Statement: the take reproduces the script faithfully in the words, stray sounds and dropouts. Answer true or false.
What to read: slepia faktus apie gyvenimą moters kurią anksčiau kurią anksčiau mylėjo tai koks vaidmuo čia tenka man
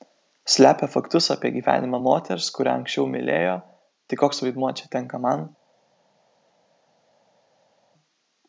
false